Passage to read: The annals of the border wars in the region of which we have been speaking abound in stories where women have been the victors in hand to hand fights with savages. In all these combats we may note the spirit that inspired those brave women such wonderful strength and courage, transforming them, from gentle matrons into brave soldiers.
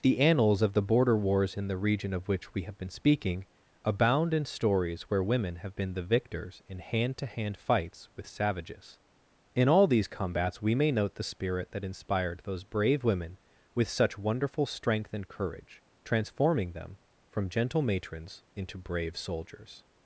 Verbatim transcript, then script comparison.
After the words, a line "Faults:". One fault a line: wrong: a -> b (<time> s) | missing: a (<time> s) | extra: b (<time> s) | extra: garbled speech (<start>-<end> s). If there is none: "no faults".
The annals of the border wars in the region of which we have been speaking abound in stories where women have been the victors in hand to hand fights with savages. In all these combats we may note the spirit that inspired those brave women with such wonderful strength and courage, transforming them, from gentle matrons into brave soldiers.
Faults:
extra: with (13.8 s)